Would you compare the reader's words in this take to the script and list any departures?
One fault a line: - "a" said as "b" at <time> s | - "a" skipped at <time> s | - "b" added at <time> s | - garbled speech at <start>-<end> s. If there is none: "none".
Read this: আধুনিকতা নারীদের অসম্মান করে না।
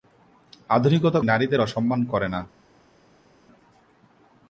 none